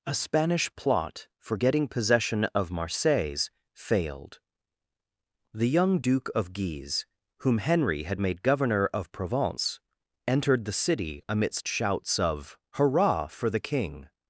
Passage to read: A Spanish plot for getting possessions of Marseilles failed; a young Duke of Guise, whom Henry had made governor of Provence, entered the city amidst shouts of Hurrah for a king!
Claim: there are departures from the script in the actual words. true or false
true